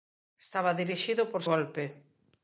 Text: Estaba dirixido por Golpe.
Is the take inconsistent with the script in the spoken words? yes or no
no